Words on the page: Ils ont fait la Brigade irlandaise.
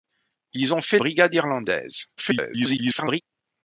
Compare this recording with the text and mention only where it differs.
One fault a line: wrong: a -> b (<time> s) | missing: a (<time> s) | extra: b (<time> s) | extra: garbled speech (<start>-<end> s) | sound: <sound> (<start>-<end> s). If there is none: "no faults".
missing: la (1.0 s)
extra: garbled speech (2.2-3.2 s)